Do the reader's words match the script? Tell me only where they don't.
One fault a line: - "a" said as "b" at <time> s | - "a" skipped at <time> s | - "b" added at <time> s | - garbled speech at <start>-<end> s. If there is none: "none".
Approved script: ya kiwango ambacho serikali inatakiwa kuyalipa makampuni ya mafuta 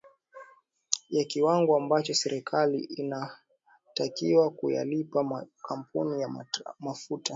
none